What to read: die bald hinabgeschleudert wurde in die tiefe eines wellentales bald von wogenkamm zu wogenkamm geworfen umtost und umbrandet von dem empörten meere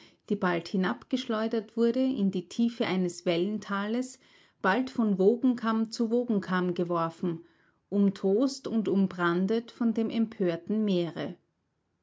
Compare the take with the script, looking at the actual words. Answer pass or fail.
pass